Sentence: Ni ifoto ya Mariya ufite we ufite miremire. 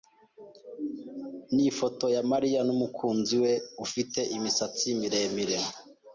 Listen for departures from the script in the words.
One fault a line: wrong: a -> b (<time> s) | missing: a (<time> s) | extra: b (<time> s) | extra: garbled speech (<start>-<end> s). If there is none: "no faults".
wrong: ufite -> n'umukunzi (2.7 s)
extra: imisatsi (4.3 s)